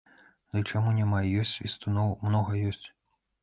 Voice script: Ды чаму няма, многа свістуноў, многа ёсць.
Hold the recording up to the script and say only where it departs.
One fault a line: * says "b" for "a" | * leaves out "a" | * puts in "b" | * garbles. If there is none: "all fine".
* says "ёсць" for "многа"